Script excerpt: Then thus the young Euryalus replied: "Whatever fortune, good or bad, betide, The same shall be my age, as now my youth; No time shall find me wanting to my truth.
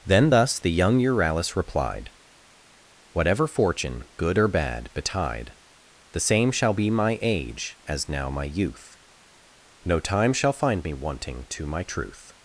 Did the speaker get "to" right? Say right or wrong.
right